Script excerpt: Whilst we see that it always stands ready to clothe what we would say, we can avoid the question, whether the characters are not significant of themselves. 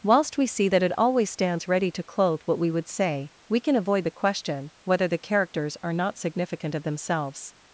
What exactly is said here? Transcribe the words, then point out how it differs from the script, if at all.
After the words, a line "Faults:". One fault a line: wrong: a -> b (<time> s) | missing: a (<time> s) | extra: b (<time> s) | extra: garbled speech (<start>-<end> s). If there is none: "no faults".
Whilst we see that it always stands ready to clothe what we would say, we can avoid the question, whether the characters are not significant of themselves.
Faults:
no faults